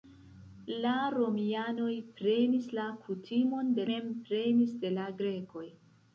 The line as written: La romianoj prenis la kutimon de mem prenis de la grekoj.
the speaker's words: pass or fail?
pass